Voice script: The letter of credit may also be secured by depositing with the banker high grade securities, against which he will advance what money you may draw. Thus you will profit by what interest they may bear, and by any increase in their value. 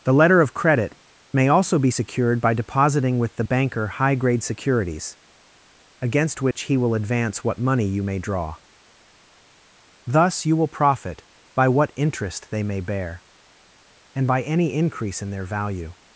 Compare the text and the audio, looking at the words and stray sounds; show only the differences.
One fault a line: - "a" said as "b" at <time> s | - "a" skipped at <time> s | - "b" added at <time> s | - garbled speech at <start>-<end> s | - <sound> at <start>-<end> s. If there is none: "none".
- dropout at 6.5-6.6 s